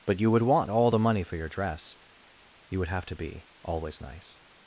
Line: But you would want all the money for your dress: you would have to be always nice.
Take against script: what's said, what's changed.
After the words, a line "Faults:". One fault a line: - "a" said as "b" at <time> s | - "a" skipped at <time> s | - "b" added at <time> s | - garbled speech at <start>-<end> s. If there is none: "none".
But you would want all the money for your dress: you would have to be always nice.
Faults:
none